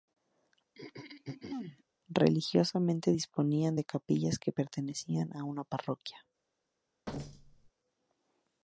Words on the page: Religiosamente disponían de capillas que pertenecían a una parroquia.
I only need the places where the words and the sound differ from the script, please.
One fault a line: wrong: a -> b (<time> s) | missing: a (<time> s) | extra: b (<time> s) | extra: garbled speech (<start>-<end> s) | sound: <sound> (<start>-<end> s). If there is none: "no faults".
sound: throat clearing (0.7-1.8 s)
sound: thud (7.1-7.7 s)